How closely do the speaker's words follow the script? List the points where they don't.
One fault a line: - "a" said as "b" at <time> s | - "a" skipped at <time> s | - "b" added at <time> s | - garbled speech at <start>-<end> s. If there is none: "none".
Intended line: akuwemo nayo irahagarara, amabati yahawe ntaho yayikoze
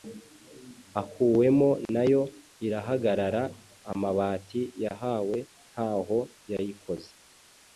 none